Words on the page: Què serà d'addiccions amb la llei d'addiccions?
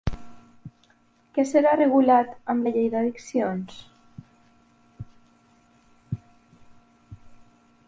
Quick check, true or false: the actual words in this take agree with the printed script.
false